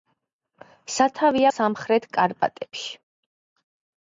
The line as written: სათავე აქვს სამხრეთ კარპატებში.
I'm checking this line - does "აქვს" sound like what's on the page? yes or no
no